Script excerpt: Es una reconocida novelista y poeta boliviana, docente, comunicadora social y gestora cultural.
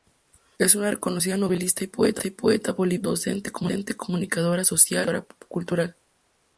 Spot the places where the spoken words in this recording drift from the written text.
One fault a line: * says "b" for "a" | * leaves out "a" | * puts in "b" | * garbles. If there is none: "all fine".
all fine